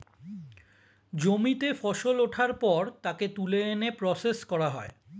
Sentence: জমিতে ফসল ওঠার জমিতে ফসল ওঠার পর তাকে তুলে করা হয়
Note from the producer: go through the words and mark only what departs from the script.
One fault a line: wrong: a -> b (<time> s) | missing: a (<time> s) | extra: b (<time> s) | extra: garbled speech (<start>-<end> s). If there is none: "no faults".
missing: জমিতে ফসল ওঠার (2.5 s)
extra: এনে প্রসেস (3.7 s)